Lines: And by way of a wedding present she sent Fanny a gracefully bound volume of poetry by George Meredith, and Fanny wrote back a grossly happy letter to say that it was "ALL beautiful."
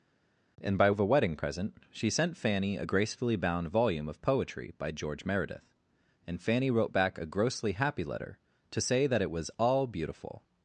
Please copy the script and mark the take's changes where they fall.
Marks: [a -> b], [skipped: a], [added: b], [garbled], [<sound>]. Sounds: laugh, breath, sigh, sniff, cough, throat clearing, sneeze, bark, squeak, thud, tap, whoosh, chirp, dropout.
And by [skipped: way] of a wedding present she sent Fanny a gracefully bound volume of poetry by George Meredith, and Fanny wrote back a grossly happy letter to say that it was "ALL beautiful."